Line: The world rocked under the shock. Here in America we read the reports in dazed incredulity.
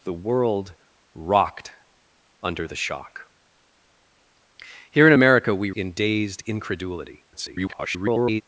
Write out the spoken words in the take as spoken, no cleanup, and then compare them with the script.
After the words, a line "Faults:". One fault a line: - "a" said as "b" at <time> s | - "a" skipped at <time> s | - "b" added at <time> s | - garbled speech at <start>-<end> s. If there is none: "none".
The world rocked under the shock. Here in America we in dazed incredulity. [garbled]
Faults:
- "read the reports" skipped at 5.7 s
- garbled speech at 7.3-8.4 s